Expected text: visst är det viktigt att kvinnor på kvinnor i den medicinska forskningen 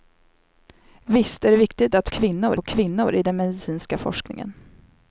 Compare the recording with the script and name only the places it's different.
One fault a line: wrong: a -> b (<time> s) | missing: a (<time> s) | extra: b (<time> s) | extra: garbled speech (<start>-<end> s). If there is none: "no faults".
no faults